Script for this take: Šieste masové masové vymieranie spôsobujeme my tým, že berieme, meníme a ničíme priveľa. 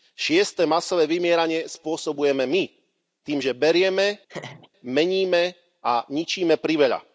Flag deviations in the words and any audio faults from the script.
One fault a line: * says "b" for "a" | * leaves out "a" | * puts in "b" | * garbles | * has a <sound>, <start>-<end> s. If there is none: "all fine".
* leaves out "masové"
* has a laugh, 4.3-4.7 s